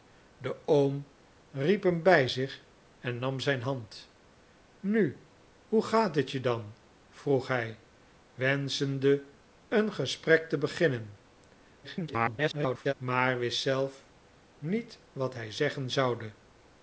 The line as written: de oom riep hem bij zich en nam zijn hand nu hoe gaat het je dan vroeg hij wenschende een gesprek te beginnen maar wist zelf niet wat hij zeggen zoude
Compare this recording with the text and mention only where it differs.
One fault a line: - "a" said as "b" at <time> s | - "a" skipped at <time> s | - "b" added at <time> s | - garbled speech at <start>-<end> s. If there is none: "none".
- garbled speech at 11.8-12.9 s